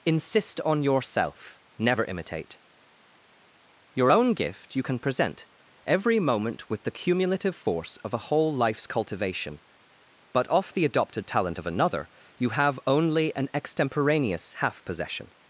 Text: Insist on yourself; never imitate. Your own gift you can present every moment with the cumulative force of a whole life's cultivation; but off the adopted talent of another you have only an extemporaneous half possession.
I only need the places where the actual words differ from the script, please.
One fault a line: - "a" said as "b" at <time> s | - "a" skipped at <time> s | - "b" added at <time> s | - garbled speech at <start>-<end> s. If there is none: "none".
none